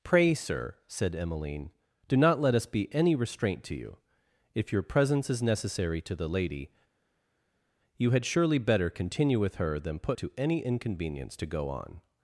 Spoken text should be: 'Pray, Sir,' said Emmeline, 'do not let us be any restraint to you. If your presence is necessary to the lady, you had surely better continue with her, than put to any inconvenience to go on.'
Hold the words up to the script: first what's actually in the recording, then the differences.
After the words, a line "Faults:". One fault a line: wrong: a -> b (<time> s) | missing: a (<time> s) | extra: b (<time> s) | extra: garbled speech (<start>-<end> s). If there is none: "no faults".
'Pray, Sir,' said Emmeline, 'do not let us be any restraint to you. If your presence is necessary to the lady, you had surely better continue with her, than put to any inconvenience to go on.'
Faults:
no faults